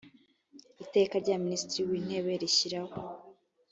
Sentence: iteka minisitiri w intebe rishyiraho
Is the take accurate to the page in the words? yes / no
no